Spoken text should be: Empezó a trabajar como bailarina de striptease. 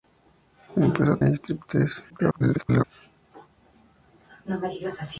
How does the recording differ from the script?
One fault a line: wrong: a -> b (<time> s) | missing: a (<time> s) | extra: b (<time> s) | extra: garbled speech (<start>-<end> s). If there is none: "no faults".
missing: trabajar como bailarina (1.2 s)
extra: garbled speech (2.1-2.8 s)